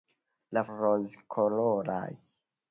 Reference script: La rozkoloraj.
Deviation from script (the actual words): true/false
false